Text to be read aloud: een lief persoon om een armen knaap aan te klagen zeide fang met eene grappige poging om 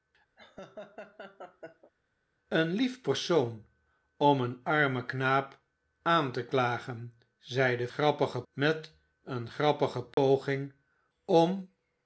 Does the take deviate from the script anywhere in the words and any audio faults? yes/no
yes